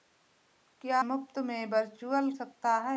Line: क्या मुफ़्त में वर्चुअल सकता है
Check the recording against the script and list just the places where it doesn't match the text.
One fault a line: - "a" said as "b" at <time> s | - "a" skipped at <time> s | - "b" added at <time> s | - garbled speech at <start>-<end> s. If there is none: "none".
none